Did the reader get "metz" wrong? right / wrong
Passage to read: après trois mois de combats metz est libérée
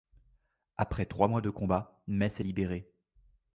right